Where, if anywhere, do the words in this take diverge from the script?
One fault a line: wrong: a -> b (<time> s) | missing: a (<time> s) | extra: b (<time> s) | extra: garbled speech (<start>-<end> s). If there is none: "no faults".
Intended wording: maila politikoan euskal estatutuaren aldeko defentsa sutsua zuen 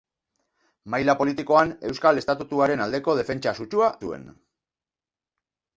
no faults